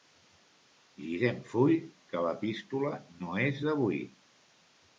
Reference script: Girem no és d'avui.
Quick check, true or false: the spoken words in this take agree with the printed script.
false